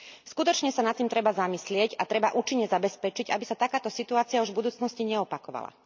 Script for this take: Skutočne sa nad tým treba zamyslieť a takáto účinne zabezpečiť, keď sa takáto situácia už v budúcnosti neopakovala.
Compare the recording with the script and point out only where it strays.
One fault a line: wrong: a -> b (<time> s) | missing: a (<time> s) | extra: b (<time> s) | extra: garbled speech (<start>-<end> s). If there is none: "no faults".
wrong: takáto -> treba (2.0 s)
wrong: keď -> aby (3.3 s)